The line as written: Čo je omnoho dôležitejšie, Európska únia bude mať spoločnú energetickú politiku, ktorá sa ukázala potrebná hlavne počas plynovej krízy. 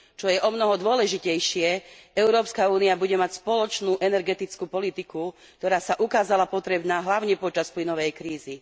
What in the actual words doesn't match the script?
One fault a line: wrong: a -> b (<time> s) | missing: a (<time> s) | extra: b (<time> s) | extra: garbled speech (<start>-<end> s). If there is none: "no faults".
no faults